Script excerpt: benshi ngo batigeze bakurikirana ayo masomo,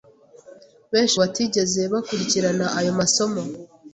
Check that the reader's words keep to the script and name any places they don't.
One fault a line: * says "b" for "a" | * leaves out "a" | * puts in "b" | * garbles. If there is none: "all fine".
* leaves out "ngo"